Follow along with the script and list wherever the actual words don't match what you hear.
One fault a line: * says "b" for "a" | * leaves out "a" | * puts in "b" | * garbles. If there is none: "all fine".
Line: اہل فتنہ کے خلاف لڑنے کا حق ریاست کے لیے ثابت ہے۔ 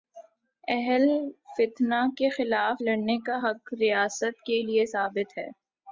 all fine